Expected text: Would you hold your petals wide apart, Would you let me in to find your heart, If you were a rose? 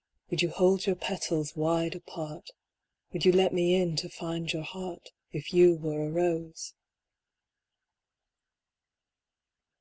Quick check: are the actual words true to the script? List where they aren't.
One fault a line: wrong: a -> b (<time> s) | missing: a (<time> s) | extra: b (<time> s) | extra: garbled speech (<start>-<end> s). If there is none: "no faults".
no faults